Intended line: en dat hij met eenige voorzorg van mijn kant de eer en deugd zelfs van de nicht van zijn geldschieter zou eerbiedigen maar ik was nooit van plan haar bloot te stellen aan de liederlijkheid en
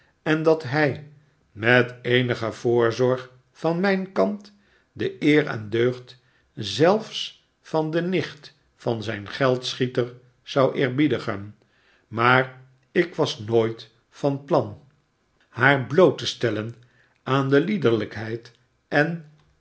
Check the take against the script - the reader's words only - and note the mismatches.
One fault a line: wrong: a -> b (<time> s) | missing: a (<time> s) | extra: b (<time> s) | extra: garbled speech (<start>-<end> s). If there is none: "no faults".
no faults